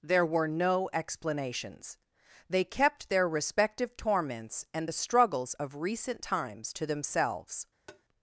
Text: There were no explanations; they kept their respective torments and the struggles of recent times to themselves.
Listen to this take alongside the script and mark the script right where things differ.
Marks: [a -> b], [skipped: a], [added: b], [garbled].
There were no explanations; they kept their respective torments and the struggles of recent times to themselves.